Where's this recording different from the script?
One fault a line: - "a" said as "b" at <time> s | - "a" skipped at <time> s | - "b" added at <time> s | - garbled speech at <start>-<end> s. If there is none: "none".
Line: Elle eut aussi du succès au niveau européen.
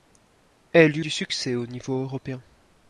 - "aussi" skipped at 1.1 s